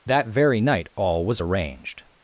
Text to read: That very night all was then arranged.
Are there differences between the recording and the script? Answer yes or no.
yes